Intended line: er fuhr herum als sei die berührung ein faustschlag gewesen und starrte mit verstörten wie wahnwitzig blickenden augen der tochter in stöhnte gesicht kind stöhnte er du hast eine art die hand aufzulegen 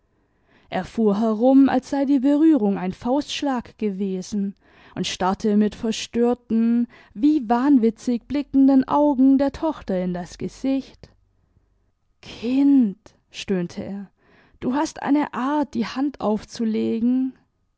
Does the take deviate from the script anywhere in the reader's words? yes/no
yes